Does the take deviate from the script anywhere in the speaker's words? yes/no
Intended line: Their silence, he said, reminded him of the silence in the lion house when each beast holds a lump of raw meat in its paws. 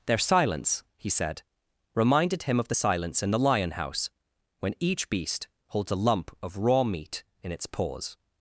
no